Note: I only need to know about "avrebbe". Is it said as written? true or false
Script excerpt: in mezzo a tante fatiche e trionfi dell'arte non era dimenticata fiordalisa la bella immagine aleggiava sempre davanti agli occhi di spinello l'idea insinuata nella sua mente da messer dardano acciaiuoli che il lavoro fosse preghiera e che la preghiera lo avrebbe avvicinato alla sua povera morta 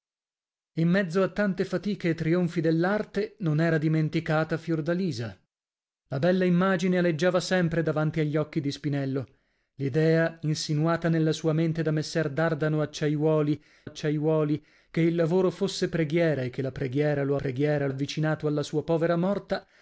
false